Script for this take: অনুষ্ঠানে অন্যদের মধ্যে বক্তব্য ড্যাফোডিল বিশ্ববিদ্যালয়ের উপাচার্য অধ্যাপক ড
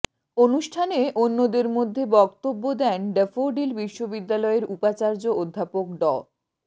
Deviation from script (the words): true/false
true